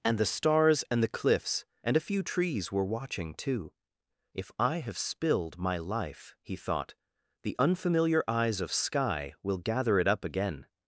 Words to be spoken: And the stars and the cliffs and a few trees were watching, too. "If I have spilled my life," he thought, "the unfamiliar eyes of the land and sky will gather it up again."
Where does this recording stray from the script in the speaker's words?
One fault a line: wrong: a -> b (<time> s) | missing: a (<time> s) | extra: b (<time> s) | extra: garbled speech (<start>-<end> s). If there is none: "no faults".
missing: the land and (8.8 s)